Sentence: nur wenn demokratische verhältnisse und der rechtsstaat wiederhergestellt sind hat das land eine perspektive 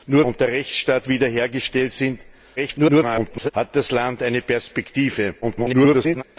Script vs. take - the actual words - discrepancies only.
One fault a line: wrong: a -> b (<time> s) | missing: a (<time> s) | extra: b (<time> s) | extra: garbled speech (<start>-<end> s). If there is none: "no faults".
missing: wenn demokratische verhältnisse (0.2 s)
extra: garbled speech (2.6-3.5 s)
extra: garbled speech (5.4-6.2 s)